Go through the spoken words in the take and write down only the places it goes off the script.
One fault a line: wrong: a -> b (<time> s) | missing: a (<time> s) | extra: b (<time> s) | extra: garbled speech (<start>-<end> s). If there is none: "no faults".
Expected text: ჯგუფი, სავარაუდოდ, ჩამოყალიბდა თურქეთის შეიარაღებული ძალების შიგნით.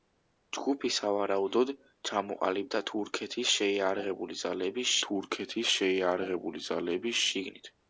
extra: თურქეთის შეიარაღებული ძალების (5.1 s)